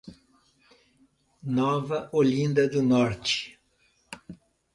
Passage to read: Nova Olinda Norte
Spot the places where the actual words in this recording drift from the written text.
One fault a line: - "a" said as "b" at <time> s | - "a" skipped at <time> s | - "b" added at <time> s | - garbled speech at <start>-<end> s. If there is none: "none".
- "do" added at 2.7 s